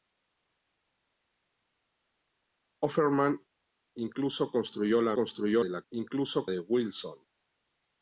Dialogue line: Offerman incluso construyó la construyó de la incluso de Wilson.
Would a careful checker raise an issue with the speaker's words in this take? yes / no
no